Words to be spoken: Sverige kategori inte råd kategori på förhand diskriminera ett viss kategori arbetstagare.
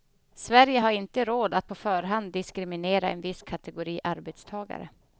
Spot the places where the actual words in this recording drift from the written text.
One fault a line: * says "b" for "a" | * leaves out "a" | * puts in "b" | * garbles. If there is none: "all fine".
* says "har" for "kategori"
* says "att" for "kategori"
* says "en" for "ett"